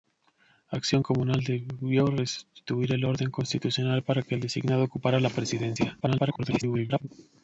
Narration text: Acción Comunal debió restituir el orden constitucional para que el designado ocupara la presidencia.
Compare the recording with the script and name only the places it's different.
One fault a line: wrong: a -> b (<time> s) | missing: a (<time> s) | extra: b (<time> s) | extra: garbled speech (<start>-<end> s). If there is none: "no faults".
extra: garbled speech (6.0-7.1 s)